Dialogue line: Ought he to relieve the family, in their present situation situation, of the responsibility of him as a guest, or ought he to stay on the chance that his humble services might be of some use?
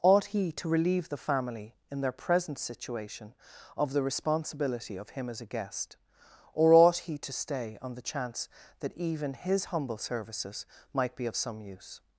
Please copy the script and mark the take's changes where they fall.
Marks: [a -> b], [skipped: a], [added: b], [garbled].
Ought he to relieve the family, in their present situation [skipped: situation,] of the responsibility of him as a guest, or ought he to stay on the chance that [added: even] his humble services might be of some use?